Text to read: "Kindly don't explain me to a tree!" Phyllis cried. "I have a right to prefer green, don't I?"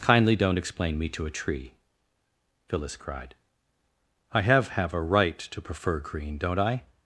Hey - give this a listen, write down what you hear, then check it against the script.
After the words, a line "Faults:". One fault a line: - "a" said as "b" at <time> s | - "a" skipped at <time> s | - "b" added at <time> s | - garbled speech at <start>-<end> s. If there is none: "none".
"Kindly don't explain me to a tree!" Phyllis cried. "I have have a right to prefer green, don't I?"
Faults:
- "have" added at 4.7 s